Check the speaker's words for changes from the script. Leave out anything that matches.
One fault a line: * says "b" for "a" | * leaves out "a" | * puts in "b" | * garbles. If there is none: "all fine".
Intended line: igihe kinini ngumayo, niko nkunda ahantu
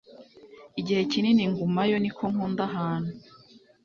all fine